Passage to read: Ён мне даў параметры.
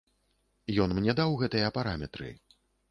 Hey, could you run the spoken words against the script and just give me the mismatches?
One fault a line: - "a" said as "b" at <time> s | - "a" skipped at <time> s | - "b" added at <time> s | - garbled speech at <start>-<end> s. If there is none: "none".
- "гэтыя" added at 1.4 s